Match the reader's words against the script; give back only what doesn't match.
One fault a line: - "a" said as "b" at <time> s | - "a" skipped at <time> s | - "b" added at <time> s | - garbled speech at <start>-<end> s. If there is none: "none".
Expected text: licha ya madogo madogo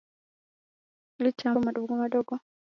none